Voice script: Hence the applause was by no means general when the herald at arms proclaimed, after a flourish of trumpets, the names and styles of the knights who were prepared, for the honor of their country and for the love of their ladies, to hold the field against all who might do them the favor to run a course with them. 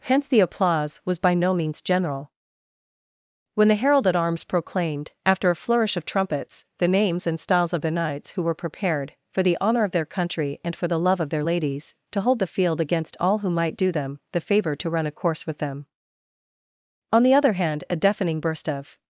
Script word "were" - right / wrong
right